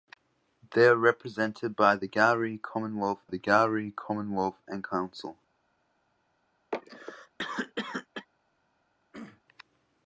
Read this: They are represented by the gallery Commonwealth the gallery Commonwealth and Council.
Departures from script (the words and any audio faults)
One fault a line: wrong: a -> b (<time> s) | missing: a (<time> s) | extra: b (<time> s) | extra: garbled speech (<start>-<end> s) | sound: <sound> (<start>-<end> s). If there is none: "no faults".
sound: cough (6.7-8.3 s)
sound: throat clearing (9.1-9.4 s)